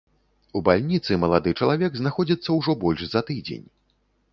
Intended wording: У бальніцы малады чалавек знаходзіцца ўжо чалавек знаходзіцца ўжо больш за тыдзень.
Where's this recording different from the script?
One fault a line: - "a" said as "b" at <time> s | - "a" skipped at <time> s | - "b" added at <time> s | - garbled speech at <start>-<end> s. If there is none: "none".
- "чалавек знаходзіцца ўжо" skipped at 2.8 s